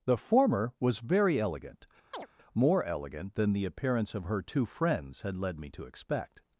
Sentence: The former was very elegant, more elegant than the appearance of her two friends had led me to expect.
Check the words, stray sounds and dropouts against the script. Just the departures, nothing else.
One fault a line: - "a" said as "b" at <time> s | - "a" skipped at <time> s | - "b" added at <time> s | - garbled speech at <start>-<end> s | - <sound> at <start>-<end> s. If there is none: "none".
- chirp at 2.1-2.3 s